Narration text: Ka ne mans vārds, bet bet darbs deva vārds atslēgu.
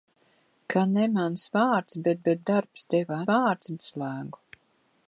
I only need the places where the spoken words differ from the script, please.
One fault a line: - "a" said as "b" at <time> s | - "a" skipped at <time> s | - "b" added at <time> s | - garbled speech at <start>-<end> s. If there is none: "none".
none